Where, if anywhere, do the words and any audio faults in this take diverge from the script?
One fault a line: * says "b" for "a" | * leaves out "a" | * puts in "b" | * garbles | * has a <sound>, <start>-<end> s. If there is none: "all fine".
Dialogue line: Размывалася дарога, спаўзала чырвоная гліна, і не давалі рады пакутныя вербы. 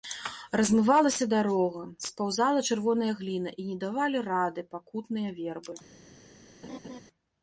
* has a laugh, 6.6-7.0 s